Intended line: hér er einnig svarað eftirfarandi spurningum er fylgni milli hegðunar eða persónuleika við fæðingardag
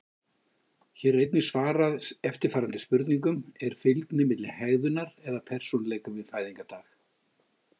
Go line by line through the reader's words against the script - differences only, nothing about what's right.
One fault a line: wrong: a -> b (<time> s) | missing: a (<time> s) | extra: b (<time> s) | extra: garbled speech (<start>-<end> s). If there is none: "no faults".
no faults